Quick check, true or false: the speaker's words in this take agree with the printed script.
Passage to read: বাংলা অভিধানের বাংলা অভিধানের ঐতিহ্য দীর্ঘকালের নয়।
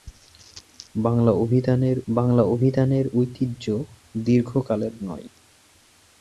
true